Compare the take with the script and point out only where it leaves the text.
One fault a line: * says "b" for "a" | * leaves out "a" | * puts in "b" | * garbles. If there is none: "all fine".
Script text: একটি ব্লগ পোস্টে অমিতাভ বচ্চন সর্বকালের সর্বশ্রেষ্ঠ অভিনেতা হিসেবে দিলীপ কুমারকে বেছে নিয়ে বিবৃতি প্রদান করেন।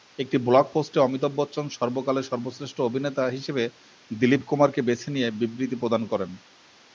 all fine